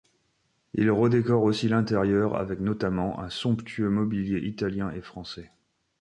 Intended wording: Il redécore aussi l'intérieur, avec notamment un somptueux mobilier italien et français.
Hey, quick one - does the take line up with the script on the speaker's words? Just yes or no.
yes